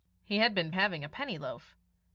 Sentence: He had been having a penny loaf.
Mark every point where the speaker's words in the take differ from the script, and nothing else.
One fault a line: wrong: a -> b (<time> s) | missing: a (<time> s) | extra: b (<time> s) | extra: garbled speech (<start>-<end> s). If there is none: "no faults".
no faults